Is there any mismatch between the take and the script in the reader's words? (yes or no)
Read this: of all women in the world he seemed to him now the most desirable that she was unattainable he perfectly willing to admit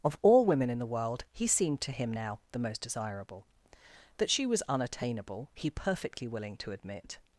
no